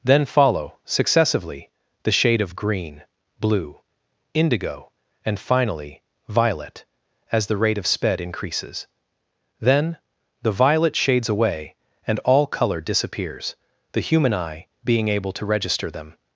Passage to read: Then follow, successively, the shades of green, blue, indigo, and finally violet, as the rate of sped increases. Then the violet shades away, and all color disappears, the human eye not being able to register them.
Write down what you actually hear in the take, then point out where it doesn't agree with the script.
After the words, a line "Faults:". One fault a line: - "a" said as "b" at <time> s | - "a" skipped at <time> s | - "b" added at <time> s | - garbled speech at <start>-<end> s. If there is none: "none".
Then follow, successively, the shade of green, blue, indigo, and finally violet, as the rate of sped increases. Then the violet shades away, and all color disappears, the human eye being able to register them.
Faults:
- "shades" said as "shade" at 2.1 s
- "not" skipped at 14.7 s